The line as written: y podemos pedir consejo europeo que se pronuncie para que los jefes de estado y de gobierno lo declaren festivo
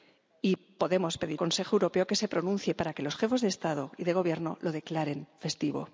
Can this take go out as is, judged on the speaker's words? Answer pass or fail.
pass